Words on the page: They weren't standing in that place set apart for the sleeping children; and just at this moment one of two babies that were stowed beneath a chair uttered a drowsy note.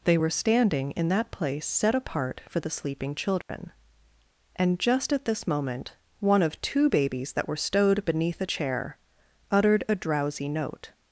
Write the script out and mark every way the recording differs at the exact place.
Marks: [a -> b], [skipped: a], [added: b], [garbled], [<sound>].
They [weren't -> were] standing in that place set apart for the sleeping children; [dropout] and just at this moment one of two babies that were stowed beneath a chair uttered a drowsy note.